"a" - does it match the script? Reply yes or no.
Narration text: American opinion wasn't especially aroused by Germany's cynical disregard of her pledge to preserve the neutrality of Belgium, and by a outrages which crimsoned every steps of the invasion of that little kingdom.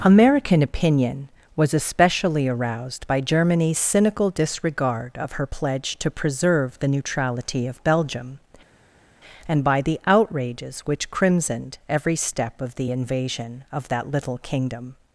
no